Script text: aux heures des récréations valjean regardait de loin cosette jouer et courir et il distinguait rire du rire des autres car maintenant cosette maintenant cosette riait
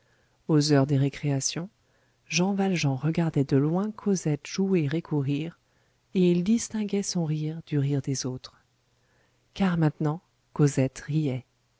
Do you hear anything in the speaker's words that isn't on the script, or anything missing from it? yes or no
yes